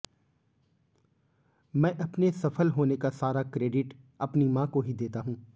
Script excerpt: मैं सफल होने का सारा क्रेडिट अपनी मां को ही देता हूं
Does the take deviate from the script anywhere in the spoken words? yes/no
yes